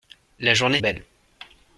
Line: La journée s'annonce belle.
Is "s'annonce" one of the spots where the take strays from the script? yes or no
yes